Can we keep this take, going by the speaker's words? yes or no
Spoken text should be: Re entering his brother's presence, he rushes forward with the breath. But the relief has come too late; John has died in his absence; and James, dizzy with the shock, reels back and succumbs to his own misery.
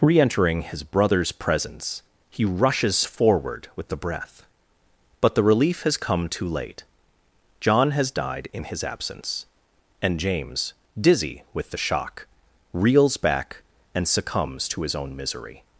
yes